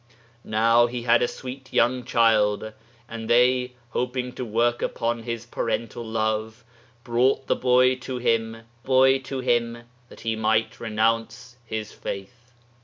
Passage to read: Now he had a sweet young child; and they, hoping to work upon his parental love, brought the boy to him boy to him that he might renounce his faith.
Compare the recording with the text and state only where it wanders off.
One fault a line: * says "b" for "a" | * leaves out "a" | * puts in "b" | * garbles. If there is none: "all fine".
all fine